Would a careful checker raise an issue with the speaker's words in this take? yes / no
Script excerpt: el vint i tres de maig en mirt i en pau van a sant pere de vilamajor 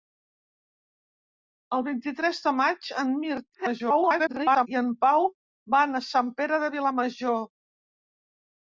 yes